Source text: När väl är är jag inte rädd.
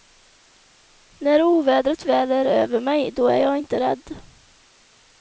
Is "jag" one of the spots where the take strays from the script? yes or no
no